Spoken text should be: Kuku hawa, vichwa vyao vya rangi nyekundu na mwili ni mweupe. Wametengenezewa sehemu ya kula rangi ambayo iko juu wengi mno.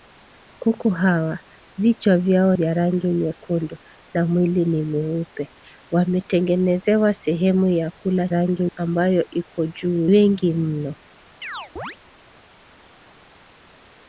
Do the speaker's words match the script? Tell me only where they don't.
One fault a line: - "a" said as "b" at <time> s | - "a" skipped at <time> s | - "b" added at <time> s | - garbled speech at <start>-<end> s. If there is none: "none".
none